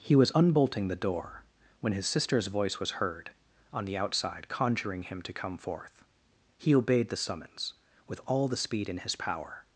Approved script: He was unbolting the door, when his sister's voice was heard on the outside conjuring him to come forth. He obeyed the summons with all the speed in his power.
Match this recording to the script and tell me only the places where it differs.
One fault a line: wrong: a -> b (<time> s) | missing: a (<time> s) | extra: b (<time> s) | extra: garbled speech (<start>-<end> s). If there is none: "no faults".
no faults